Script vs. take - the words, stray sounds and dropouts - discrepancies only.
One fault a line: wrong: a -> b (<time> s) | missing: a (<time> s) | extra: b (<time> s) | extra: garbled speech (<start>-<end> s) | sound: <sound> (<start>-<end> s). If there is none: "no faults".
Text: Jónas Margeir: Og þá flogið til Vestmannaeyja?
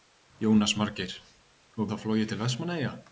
no faults